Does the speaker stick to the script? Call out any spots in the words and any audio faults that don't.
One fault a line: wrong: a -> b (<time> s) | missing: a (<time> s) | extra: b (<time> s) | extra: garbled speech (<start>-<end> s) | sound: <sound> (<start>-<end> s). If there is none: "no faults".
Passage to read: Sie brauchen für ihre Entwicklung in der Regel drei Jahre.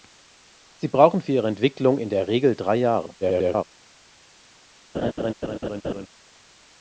extra: garbled speech (3.2-3.6 s)
sound: laugh (4.9-6.1 s)